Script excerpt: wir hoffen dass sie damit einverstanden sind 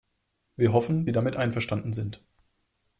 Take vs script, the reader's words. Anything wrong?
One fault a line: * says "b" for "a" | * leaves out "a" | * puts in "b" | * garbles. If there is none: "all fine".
* leaves out "dass"